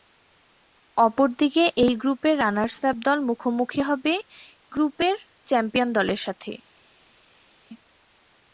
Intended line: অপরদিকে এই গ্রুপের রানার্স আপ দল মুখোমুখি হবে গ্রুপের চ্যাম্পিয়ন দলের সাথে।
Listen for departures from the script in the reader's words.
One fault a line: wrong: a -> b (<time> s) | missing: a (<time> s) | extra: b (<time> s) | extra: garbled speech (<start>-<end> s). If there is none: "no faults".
no faults